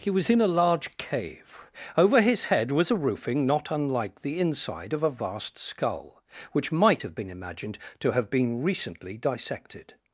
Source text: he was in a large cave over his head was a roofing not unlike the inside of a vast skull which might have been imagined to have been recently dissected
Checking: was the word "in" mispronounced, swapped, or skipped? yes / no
no